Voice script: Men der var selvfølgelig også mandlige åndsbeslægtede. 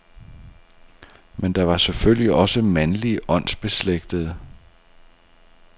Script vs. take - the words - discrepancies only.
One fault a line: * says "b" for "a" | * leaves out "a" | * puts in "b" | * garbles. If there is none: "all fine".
all fine